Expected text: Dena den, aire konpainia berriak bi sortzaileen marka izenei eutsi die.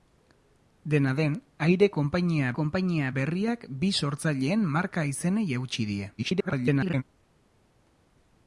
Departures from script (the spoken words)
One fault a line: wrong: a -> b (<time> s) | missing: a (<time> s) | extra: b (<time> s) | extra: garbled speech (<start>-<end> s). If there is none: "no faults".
extra: konpainia (2.6 s)
extra: garbled speech (6.2-7.0 s)